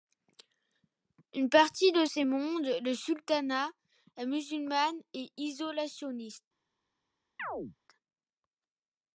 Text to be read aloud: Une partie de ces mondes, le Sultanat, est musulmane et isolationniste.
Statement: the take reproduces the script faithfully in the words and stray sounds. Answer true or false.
false